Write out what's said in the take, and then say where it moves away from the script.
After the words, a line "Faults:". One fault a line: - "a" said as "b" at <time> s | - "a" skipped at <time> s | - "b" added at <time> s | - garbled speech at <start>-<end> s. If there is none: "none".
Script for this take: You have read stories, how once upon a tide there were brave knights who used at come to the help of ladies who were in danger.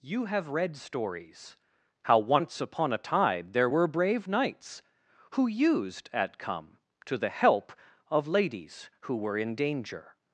You have read stories, how once upon a tide there were brave knights who used at come to the help of ladies who were in danger.
Faults:
none